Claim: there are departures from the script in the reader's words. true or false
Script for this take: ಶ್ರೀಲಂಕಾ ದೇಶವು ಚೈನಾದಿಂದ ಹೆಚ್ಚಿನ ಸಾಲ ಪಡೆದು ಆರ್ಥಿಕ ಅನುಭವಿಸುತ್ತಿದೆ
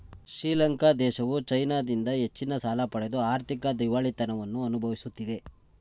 true